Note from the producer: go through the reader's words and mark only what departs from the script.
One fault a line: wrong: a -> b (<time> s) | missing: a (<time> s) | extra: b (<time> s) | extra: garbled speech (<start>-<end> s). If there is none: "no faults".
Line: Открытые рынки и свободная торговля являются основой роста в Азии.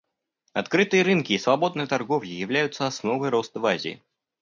no faults